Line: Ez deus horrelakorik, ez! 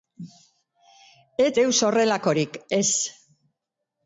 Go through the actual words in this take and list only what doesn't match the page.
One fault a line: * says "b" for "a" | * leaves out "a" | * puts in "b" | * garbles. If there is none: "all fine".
all fine